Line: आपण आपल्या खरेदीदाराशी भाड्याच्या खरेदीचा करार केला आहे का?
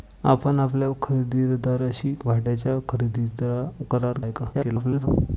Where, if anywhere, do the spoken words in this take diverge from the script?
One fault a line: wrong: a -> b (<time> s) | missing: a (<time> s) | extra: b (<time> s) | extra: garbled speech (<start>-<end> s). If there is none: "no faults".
missing: केला (4.2 s)
extra: garbled speech (4.5-5.1 s)